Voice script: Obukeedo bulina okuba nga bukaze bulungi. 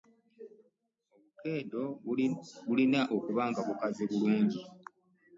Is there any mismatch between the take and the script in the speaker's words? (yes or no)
no